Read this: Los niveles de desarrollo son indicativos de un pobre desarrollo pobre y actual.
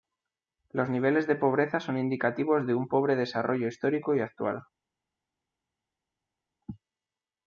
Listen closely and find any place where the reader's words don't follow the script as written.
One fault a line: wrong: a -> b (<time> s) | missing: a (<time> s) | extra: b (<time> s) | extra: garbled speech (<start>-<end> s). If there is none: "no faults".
wrong: desarrollo -> pobreza (1.3 s)
wrong: pobre -> histórico (3.7 s)